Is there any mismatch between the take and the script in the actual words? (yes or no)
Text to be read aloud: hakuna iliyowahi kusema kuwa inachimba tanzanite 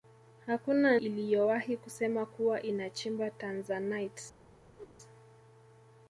no